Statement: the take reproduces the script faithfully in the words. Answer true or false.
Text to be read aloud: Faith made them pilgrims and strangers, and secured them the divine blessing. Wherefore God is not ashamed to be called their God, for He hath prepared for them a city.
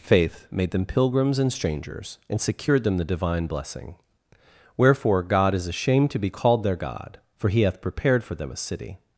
false